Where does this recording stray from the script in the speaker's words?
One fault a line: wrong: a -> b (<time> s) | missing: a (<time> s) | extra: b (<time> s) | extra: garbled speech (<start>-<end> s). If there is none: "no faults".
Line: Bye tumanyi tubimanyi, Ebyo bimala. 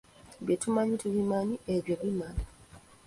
no faults